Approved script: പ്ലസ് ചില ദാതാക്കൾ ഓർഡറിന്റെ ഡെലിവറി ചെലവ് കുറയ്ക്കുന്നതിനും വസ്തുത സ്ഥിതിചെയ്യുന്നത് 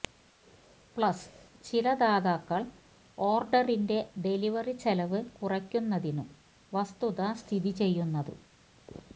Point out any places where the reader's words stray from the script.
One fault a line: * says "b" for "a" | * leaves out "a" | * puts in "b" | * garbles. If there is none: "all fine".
all fine